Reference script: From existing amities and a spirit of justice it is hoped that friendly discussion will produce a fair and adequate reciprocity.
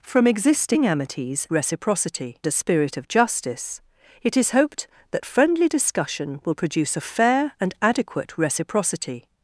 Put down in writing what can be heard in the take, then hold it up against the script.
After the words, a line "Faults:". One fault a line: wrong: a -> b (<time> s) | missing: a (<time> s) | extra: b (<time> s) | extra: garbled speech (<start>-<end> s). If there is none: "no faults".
From existing amities reciprocity a spirit of justice it is hoped that friendly discussion will produce a fair and adequate reciprocity.
Faults:
wrong: and -> reciprocity (1.5 s)